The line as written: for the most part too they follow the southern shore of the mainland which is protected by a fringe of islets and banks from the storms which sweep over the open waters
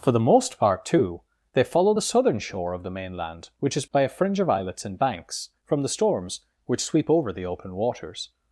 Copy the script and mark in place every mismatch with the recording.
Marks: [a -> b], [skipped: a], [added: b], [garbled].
for the most part too they follow the southern shore of the mainland which is [skipped: protected] by a fringe of islets and banks from the storms which sweep over the open waters